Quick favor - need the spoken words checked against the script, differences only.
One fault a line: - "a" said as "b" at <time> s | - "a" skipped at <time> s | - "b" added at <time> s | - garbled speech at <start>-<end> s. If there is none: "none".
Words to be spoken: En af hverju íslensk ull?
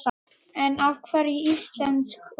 none